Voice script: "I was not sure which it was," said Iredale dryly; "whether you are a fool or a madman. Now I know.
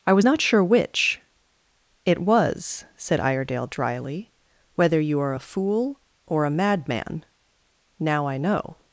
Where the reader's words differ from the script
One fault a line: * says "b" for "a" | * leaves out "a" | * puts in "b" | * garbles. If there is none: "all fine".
all fine